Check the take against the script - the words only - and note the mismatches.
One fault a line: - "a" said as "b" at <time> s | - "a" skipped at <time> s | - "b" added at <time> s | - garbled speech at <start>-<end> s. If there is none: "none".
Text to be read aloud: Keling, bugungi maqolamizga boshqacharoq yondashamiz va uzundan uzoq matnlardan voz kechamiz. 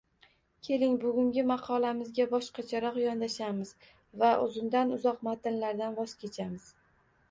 none